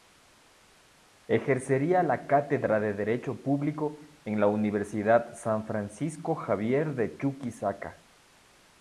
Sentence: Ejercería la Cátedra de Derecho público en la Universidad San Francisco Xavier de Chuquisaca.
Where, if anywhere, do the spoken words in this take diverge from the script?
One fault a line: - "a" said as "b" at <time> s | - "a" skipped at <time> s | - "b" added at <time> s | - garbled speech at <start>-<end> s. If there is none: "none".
none